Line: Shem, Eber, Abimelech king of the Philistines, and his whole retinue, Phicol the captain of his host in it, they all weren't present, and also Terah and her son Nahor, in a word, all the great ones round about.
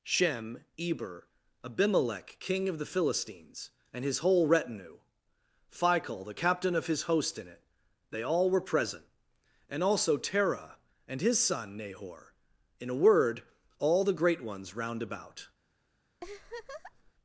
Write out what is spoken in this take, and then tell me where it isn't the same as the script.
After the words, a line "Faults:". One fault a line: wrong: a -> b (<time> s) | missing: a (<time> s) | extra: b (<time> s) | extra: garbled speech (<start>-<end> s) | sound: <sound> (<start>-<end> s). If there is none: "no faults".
Shem, Eber, Abimelech king of the Philistines, and his whole retinue, Phicol the captain of his host in it, they all were present, and also Terah and his son Nahor, in a word, all the great ones round about.
Faults:
wrong: weren't -> were (8.5 s)
wrong: her -> his (11.2 s)
sound: laugh (16.2-17.1 s)